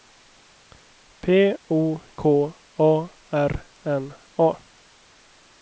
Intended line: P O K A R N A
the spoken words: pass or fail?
pass